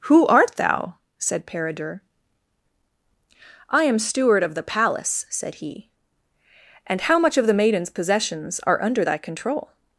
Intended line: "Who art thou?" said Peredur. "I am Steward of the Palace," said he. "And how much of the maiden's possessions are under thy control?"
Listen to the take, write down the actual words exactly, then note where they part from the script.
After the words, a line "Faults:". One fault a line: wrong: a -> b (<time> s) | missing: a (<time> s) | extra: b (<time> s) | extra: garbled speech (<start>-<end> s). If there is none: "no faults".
"Who art thou?" said Peredur. "I am Steward of the Palace," said he. "And how much of the maiden's possessions are under thy control?"
Faults:
no faults